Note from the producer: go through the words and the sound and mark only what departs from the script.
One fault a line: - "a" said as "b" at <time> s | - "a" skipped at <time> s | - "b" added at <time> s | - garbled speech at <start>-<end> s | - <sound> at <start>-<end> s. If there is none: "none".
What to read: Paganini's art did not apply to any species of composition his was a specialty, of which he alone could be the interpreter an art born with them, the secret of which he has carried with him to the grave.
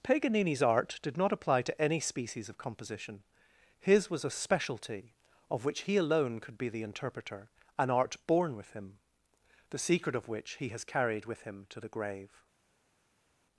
- "them" said as "him" at 8.7 s